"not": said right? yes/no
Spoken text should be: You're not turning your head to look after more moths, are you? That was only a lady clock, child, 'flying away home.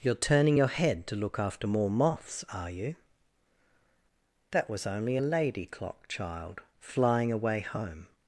no